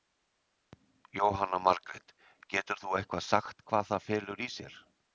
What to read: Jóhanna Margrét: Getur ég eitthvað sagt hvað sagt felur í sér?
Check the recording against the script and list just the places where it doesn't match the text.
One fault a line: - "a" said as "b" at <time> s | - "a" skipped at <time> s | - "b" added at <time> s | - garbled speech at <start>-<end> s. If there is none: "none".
- "ég" said as "þú" at 2.8 s
- "sagt" said as "það" at 3.9 s